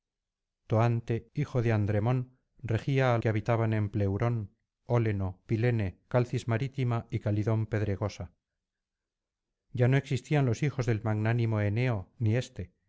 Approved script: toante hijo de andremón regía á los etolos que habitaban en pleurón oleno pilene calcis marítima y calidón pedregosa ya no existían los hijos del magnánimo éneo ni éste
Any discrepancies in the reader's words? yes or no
yes